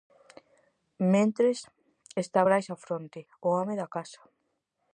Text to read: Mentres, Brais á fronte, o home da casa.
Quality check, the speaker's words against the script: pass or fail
fail